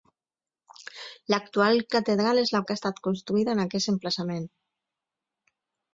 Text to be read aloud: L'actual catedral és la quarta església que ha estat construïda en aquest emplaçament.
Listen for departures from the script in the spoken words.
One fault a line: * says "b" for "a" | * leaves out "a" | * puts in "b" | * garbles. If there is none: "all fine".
* leaves out "quarta església"